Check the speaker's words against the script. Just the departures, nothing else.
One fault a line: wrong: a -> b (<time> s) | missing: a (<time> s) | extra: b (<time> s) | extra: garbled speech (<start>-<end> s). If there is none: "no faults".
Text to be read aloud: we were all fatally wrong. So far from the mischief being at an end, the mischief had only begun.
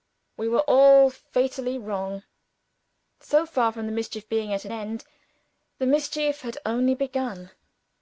no faults